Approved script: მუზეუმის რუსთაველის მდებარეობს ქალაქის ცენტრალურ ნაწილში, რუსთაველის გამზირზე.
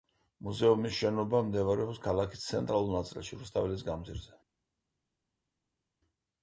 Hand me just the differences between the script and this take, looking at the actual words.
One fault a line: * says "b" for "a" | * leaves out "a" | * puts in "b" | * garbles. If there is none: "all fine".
* says "შენობა" for "რუსთაველის"